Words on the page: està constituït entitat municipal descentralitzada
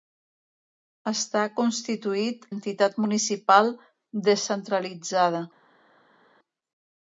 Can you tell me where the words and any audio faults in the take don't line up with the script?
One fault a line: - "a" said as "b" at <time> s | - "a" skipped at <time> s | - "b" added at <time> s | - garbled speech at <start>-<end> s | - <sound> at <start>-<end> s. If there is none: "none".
none